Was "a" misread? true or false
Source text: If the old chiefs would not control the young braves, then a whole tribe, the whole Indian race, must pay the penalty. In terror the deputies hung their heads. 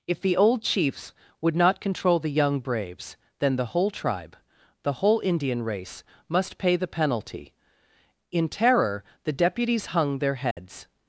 true